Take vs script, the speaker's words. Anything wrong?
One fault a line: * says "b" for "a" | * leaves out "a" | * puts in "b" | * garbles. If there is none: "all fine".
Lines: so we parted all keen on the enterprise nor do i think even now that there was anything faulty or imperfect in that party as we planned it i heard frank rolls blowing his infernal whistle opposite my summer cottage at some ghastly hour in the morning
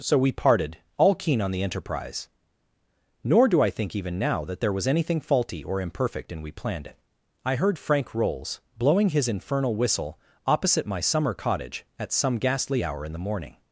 * leaves out "that party as"